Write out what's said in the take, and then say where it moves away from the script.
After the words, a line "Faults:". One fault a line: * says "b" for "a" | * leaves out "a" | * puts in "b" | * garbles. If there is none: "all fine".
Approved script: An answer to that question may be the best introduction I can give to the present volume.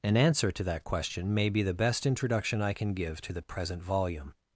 An answer to that question may be the best introduction I can give to the present volume.
Faults:
all fine